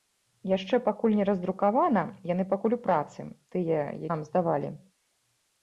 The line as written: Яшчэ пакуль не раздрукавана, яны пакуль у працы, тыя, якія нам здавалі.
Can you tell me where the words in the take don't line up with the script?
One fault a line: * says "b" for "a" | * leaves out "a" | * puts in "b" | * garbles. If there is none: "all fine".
* leaves out "якія"